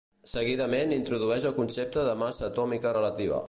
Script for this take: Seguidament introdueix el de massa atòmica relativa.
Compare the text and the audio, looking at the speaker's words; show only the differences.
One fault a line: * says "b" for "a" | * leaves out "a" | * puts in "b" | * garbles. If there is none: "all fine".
* puts in "concepte"